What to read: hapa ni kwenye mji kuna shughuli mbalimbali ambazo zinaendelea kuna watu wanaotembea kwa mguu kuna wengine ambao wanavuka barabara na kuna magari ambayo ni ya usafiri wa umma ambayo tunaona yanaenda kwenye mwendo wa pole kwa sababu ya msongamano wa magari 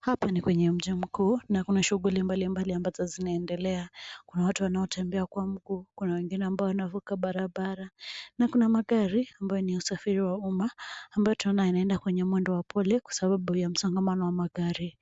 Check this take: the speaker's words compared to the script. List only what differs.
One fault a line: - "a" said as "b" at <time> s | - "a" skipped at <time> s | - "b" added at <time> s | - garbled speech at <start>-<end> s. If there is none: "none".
- "mkuu na" added at 0.9 s